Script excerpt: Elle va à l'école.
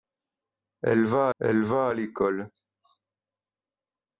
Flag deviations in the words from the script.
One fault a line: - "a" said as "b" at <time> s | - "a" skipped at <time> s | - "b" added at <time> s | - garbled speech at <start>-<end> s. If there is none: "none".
- "elle va" added at 1.4 s